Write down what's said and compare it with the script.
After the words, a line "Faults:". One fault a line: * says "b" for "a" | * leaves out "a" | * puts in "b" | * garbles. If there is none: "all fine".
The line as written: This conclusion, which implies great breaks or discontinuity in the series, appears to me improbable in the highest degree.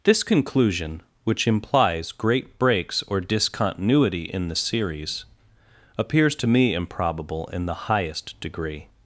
This conclusion, which implies great breaks or discontinuity in the series, appears to me improbable in the highest degree.
Faults:
all fine